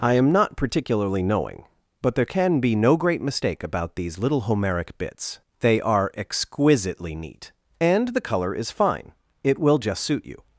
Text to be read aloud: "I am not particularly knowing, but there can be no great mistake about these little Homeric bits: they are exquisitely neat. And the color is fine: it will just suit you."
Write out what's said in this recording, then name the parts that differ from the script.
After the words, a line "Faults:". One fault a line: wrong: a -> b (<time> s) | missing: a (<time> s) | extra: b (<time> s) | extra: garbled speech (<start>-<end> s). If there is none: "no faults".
"I am not particularly knowing, but there can be no great mistake about these little Homeric bits: they are exquisitely neat. And the color is fine: it will just suit you."
Faults:
no faults